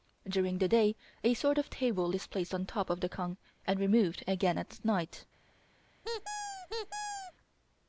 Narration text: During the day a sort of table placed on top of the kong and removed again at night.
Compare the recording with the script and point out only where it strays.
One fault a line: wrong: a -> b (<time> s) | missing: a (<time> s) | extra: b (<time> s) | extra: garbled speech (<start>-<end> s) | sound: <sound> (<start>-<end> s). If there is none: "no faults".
extra: is (2.1 s)
sound: squeak (6.0-7.3 s)